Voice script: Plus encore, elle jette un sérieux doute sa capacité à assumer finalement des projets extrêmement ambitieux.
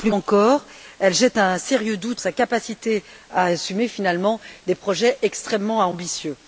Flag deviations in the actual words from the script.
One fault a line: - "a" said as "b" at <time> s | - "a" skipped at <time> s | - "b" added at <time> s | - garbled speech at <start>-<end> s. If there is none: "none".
none